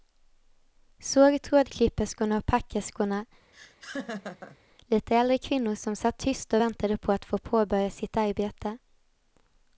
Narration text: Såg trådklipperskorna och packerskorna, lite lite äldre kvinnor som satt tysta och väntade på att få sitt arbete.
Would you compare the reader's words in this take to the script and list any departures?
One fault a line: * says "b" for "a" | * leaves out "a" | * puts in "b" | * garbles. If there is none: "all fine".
* leaves out "lite"
* puts in "påbörja"